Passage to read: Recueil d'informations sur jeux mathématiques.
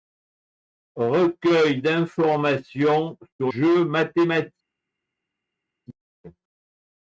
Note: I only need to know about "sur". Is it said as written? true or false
true